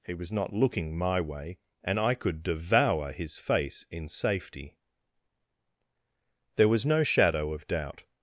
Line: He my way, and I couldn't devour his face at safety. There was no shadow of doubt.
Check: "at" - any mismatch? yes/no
yes